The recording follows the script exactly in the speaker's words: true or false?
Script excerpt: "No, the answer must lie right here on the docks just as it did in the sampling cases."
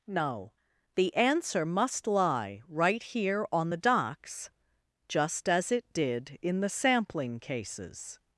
true